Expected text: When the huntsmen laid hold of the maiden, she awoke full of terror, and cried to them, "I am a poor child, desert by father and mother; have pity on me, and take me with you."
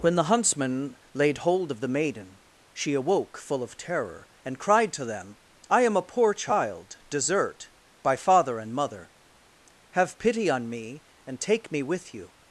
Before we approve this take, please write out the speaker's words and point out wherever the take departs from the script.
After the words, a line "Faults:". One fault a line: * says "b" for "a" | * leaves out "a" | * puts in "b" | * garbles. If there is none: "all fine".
When the huntsmen laid hold of the maiden, she awoke full of terror, and cried to them, "I am a poor child, desert by father and mother; have pity on me, and take me with you."
Faults:
all fine